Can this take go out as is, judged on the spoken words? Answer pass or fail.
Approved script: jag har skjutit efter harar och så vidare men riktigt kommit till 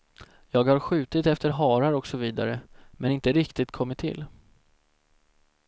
fail